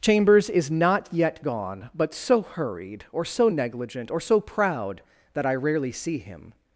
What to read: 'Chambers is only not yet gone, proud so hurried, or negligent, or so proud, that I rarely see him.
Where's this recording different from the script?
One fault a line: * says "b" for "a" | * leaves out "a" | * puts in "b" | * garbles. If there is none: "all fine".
* leaves out "only"
* says "but" for "proud"
* puts in "so"